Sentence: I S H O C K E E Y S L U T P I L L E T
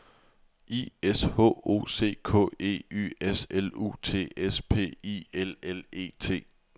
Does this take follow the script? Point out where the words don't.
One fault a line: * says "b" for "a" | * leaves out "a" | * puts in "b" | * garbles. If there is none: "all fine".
* leaves out "E"
* puts in "S"